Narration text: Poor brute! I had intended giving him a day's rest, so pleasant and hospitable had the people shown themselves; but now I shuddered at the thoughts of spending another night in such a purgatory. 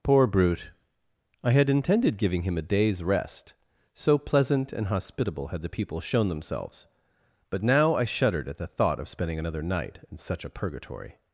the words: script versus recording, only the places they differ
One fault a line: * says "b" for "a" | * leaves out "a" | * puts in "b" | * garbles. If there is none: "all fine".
* says "thought" for "thoughts"